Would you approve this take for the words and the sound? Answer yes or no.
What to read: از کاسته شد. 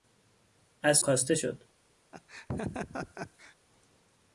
no